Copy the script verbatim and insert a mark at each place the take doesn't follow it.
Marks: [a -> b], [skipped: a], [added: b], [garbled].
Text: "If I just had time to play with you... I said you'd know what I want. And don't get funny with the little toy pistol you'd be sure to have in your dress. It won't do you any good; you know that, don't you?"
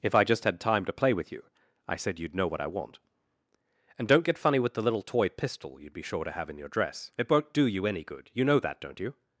"If I just had time to play with you... I said you'd know what I want. And don't get funny with the little toy pistol you'd be sure to have in your dress. It won't do you any good; you know that, don't you?"